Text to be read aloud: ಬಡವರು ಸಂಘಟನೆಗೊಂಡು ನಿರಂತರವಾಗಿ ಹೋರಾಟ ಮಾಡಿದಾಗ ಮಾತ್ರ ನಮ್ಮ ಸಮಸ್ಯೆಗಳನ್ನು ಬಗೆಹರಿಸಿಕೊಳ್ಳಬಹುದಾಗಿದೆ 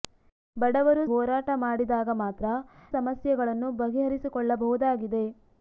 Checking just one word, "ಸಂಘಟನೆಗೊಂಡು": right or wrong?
wrong